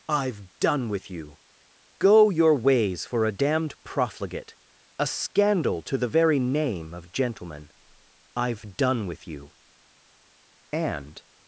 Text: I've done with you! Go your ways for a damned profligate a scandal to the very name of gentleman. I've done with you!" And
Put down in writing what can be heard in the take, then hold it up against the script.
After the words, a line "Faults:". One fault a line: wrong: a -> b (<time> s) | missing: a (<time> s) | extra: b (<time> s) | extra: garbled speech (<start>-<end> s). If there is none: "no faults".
I've done with you! Go your ways for a damned profligate a scandal to the very name of gentleman. I've done with you!" And
Faults:
no faults